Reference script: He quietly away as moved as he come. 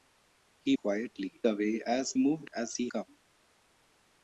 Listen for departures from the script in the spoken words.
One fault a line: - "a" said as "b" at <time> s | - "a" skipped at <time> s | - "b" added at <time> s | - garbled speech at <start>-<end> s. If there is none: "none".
none